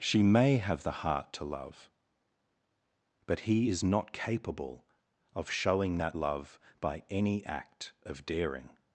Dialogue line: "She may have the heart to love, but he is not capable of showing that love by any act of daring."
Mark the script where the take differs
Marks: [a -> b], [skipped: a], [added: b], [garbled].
"She may have the heart to love, but he is not capable of showing that love by any act of daring."